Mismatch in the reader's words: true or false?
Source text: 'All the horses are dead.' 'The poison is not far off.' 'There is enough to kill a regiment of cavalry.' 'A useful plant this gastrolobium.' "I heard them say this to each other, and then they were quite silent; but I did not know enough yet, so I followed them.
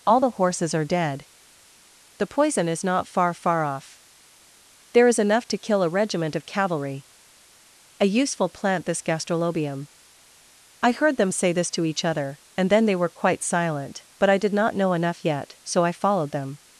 true